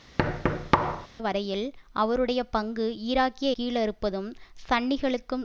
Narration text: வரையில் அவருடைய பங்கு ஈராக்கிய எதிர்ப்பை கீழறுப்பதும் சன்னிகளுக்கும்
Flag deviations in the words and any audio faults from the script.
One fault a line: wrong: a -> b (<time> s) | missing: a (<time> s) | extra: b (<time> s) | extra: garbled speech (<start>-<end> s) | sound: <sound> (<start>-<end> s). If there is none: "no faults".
sound: thud (0.2-1.1 s)
missing: எதிர்ப்பை (3.5 s)